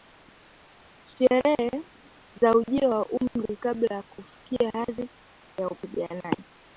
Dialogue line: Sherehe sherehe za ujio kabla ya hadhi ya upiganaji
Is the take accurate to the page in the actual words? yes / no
no